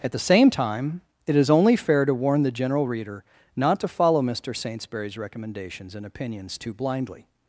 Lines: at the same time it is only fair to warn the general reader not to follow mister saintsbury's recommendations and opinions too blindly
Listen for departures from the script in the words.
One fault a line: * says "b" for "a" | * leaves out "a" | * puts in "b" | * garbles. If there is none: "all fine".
all fine